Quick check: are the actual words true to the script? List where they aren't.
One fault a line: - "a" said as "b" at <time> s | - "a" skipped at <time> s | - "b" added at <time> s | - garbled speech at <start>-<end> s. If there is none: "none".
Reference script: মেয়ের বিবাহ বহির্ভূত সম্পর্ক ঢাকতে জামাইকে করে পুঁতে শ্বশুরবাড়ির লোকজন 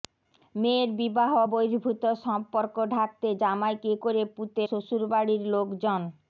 none